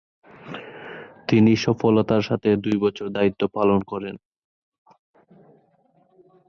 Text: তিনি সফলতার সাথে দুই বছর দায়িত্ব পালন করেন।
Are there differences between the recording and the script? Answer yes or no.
no